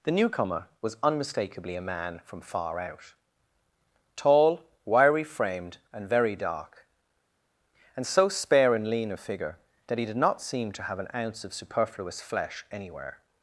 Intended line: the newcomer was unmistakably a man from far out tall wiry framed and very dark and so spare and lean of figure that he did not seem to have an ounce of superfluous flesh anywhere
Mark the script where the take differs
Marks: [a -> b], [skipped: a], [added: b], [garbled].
the newcomer was unmistakably a man from far out tall wiry framed and very dark and so spare and lean of figure that he did not seem to have an ounce of superfluous flesh anywhere